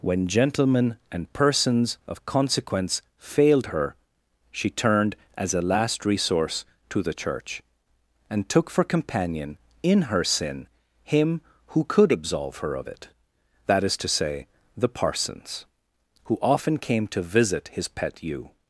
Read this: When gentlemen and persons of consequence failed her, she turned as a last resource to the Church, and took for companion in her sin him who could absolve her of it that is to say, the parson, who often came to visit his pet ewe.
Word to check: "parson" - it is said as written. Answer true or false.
false